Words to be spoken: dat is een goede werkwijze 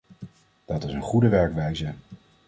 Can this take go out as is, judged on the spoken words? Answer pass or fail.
pass